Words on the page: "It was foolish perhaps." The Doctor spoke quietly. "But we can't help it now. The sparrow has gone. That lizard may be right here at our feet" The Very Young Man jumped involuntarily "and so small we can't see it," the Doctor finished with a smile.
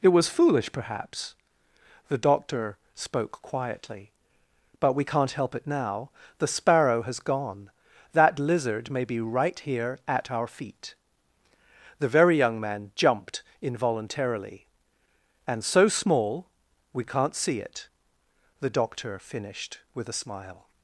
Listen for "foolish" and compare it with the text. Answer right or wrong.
right